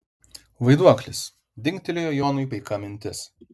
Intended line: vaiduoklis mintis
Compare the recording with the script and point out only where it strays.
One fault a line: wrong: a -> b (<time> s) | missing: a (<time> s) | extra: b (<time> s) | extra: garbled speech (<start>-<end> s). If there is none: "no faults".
extra: dingtelėjo jonui paika (1.7 s)